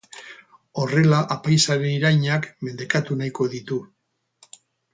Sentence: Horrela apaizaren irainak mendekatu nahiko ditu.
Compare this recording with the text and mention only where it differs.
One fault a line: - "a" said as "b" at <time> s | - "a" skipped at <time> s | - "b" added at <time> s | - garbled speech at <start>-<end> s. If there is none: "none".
none